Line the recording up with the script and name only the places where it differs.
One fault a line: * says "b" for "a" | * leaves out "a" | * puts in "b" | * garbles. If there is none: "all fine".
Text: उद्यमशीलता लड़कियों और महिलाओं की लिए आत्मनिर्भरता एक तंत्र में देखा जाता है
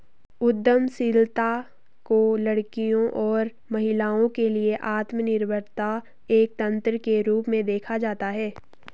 * puts in "को"
* says "के" for "की"
* puts in "के रूप"